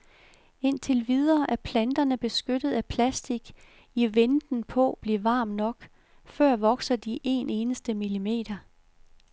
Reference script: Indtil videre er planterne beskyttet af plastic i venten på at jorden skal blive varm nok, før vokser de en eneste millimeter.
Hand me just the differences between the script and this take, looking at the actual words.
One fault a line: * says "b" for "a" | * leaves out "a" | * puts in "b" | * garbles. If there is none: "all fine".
* leaves out "at jorden skal"